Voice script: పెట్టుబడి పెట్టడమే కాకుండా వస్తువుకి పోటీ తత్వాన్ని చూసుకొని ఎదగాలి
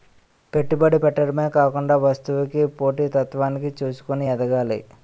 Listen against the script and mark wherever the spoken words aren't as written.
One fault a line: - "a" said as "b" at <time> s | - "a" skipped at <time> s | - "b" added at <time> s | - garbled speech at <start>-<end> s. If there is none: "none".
none